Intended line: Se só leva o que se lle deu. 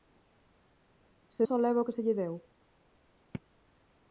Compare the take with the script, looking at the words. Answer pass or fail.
pass